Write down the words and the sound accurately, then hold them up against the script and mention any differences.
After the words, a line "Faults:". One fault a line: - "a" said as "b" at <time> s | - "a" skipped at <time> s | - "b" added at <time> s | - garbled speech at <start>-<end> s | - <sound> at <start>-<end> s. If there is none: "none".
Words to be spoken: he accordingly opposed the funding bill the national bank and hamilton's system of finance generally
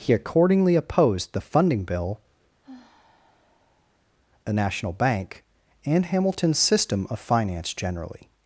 he accordingly opposed the funding bill the national bank and hamilton's system of finance generally
Faults:
- sigh at 2.6-4.0 s